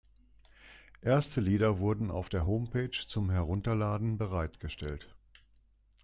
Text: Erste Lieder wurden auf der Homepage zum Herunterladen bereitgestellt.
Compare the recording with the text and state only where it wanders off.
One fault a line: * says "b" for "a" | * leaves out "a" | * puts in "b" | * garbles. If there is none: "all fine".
all fine